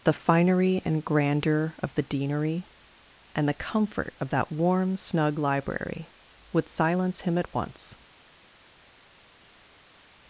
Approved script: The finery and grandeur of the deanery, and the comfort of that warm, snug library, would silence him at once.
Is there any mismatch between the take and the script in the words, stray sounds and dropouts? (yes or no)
no